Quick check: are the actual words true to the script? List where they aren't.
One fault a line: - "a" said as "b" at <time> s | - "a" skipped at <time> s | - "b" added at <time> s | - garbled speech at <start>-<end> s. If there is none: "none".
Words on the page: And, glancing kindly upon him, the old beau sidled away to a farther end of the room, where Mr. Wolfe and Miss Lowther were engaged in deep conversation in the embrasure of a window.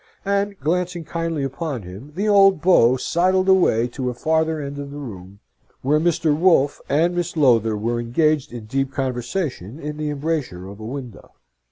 none